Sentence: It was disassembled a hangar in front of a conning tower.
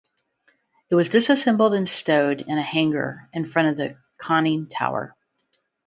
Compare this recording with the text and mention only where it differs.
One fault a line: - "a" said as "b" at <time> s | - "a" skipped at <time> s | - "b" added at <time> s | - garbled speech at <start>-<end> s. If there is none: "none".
- "and stowed in" added at 1.8 s
- "a" said as "the" at 3.8 s